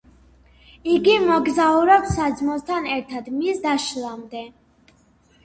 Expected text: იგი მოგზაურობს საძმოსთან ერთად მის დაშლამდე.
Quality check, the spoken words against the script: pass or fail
pass